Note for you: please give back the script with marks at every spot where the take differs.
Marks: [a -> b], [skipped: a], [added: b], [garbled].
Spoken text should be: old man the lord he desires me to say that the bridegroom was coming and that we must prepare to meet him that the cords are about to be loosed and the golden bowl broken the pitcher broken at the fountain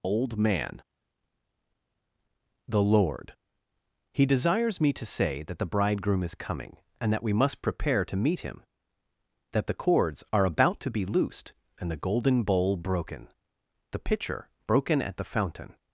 old man the lord he desires me to say that the bridegroom [was -> is] coming and that we must prepare to meet him that the cords are about to be loosed and the golden bowl broken the pitcher broken at the fountain